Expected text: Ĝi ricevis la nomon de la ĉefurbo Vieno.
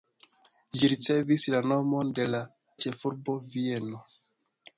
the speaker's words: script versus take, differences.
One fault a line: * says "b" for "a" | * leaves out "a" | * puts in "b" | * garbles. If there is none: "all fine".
all fine